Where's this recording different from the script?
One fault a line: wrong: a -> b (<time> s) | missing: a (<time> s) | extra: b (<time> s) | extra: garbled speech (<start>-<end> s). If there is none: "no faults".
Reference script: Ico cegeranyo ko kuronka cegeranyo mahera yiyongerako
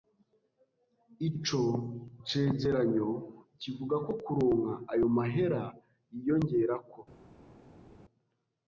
extra: kivuga (3.6 s)
wrong: cegeranyo -> ayo (4.9 s)